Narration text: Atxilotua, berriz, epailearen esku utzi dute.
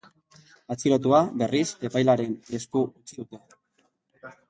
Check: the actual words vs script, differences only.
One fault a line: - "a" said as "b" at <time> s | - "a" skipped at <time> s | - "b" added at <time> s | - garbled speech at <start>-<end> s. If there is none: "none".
none